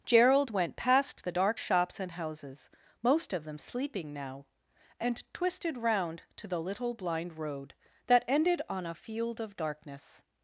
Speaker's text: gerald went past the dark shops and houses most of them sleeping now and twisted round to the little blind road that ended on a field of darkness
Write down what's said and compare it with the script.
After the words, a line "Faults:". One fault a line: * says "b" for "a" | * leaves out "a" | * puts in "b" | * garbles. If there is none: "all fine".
gerald went past the dark shops and houses most of them sleeping now and twisted round to the little blind road that ended on a field of darkness
Faults:
all fine